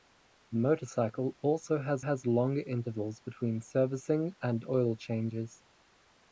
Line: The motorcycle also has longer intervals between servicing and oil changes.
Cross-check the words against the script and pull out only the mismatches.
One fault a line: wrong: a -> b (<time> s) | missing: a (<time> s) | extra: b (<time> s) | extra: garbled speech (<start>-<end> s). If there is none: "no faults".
extra: has (2.0 s)